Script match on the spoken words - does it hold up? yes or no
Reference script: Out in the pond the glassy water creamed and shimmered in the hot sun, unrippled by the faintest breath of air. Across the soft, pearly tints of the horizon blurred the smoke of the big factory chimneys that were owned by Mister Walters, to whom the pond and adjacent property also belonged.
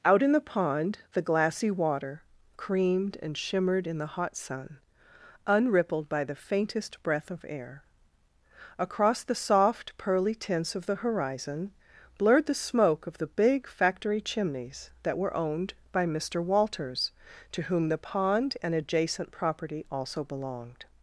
yes